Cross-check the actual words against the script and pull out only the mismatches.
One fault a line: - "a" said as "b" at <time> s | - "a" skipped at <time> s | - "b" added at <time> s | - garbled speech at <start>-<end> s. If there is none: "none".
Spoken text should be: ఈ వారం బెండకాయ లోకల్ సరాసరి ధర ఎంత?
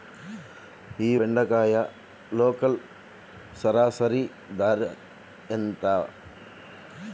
- "వారం" skipped at 1.2 s